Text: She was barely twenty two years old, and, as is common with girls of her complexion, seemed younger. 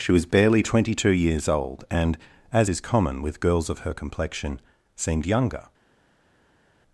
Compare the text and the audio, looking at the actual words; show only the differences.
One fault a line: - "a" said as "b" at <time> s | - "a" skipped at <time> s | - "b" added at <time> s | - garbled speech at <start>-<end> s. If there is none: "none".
none